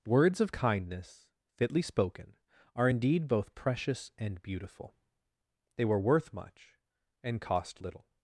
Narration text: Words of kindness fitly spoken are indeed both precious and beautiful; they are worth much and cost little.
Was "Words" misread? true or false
false